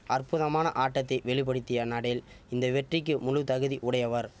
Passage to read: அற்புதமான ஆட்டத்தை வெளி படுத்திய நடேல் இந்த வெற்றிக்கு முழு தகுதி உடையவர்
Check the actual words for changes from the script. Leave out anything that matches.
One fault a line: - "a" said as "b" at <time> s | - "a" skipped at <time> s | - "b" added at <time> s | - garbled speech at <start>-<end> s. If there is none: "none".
none